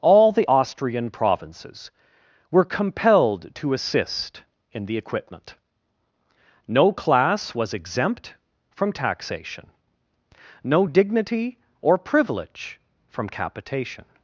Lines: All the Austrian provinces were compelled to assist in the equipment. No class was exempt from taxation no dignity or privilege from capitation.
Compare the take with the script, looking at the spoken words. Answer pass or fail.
pass